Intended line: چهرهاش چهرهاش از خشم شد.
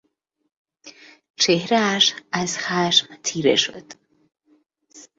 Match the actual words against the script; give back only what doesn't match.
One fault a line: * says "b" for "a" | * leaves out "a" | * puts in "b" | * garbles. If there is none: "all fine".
* leaves out "چهرهاش"
* puts in "تیره"